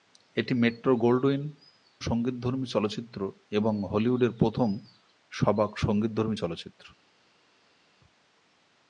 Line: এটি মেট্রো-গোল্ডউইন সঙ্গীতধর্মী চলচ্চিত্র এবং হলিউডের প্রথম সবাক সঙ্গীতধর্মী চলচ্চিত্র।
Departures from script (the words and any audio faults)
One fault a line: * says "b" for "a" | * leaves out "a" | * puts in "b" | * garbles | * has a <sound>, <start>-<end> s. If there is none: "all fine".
all fine